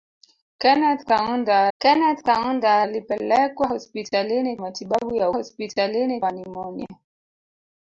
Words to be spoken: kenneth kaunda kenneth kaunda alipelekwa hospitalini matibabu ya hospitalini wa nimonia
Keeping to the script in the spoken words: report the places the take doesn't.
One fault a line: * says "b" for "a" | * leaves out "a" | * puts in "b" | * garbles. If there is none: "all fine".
all fine